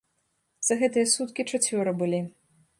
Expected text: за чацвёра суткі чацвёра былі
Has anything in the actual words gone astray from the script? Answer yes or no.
yes